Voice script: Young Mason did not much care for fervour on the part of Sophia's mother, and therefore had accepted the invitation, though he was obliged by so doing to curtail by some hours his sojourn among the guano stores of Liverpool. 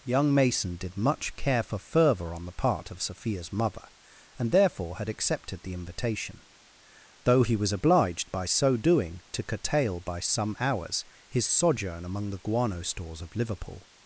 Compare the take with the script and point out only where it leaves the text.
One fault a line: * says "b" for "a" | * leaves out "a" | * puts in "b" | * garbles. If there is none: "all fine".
* leaves out "not"